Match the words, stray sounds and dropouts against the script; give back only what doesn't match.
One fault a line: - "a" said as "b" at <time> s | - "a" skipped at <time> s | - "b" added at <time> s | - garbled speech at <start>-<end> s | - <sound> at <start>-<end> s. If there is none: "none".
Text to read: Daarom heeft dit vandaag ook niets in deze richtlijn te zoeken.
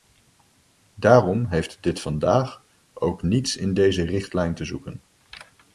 none